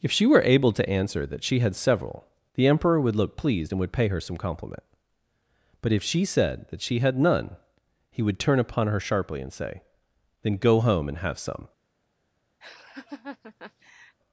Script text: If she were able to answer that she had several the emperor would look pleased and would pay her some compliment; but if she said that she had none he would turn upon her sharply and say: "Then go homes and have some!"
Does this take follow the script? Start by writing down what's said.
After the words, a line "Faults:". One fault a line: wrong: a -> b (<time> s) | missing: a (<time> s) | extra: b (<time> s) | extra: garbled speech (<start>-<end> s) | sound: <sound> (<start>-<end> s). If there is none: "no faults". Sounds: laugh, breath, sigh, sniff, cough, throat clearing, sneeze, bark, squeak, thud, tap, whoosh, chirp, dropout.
If she were able to answer that she had several the emperor would look pleased and would pay her some compliment; but if she said that she had none he would turn upon her sharply and say: "Then go home and have some!"
Faults:
wrong: homes -> home (10.8 s)
sound: laugh (12.6-14.2 s)